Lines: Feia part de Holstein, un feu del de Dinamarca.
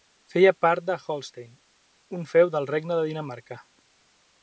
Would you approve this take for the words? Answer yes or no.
no